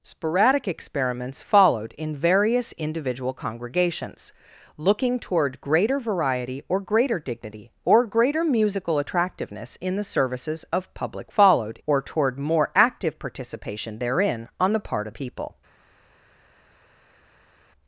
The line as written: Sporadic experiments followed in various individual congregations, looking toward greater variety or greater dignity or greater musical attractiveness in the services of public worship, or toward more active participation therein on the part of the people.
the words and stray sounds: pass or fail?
fail